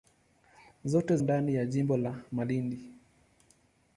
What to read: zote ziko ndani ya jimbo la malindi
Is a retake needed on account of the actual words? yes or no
yes